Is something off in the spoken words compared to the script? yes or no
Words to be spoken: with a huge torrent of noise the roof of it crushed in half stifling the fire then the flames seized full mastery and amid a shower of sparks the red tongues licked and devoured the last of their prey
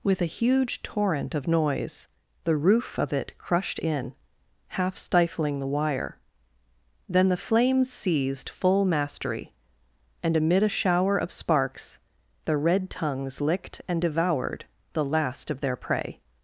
yes